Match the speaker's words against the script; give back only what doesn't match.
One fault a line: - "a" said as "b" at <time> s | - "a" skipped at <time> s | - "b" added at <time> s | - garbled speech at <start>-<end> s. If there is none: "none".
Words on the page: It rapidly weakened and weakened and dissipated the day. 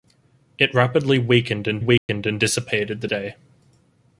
none